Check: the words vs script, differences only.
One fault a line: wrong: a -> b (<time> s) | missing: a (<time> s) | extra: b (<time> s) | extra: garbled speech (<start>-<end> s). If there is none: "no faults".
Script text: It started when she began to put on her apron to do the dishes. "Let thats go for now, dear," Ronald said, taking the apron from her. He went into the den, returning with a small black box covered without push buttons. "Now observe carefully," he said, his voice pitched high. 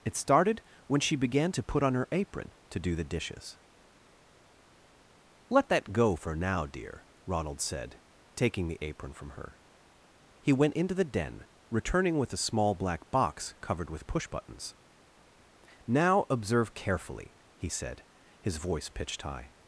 wrong: thats -> that (5.7 s)
wrong: without -> with (13.9 s)